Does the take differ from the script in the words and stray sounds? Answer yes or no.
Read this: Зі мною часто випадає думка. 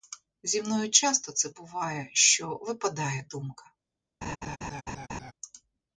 yes